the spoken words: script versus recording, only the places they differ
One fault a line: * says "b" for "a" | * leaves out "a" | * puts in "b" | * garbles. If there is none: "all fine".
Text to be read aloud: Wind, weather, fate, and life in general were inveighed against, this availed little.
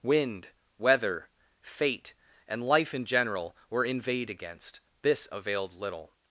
all fine